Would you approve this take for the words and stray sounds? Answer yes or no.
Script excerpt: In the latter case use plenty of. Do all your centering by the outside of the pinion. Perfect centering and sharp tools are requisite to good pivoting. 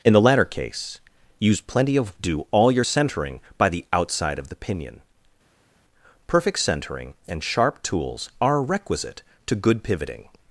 yes